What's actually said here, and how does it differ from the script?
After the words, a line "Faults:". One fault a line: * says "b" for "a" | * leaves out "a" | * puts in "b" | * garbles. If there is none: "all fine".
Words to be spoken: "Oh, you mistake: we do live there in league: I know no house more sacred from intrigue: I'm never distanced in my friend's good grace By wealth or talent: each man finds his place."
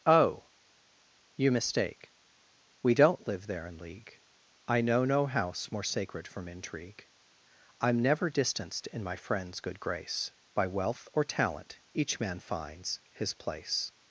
"Oh, you mistake: we don't live there in league: I know no house more sacred from intrigue: I'm never distanced in my friend's good grace By wealth or talent: each man finds his place."
Faults:
* says "don't" for "do"